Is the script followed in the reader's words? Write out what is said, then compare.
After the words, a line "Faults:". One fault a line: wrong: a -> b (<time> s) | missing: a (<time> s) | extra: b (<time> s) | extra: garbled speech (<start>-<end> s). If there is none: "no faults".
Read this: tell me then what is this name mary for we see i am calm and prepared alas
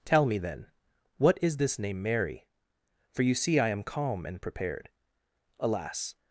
tell me then what is this name mary for you see i am calm and prepared alas
Faults:
wrong: we -> you (3.2 s)